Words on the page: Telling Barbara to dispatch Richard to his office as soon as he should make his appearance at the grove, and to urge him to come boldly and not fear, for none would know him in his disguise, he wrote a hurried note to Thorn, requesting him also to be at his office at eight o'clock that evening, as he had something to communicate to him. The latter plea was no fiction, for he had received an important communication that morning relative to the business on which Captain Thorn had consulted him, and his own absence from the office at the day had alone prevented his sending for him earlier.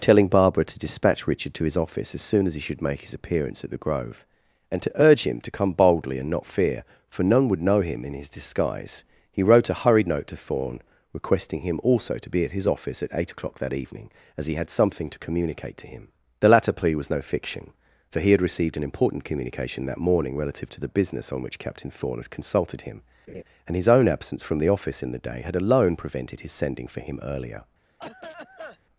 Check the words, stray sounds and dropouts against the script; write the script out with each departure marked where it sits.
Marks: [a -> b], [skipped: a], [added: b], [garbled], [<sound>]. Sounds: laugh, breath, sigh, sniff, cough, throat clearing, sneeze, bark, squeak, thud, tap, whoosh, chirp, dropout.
Telling Barbara to dispatch Richard to his office as soon as he should make his appearance at the grove, and to urge him to come boldly and not fear, for none would know him in his disguise, he wrote a hurried note to Thorn, requesting him also to be at his office at eight o'clock that evening, as he had something to communicate to him. The latter plea was no fiction, for he had received an important communication that morning relative to the business on which Captain Thorn had consulted him, [laugh] and his own absence from the office [at -> in] the day had alone prevented his sending for him earlier. [cough]